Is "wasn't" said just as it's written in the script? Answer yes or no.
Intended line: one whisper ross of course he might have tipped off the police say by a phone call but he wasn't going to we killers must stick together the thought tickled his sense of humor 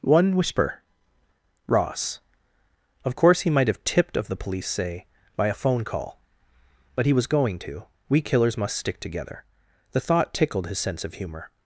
no